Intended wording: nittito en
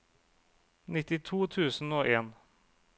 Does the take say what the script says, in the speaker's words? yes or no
no